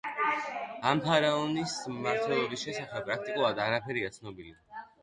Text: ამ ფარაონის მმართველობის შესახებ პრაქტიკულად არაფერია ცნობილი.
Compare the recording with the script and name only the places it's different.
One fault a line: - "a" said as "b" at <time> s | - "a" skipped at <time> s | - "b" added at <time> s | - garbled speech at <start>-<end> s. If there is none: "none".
none